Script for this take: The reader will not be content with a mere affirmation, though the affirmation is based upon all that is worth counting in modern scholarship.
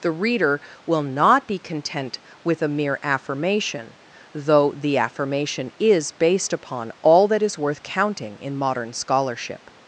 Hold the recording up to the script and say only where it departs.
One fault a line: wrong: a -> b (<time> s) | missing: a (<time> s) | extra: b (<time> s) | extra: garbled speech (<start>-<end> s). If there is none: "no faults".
no faults